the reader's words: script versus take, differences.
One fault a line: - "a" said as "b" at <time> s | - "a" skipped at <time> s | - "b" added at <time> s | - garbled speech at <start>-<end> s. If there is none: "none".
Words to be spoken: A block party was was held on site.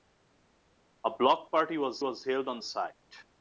none